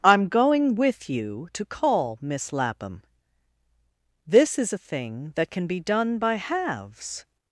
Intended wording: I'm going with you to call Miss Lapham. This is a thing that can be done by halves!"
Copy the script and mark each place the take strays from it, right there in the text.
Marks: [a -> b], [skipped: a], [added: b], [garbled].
I'm going with you to call Miss Lapham. This is a thing that can be done by halves!"